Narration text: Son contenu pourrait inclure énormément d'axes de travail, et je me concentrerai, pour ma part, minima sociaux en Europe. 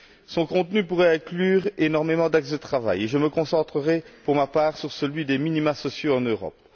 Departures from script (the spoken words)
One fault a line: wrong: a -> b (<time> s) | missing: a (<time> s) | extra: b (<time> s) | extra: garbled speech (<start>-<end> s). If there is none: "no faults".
extra: sur celui des (4.8 s)